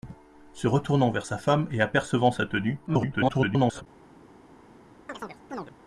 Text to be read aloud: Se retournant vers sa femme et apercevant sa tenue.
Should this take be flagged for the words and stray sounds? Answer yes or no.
yes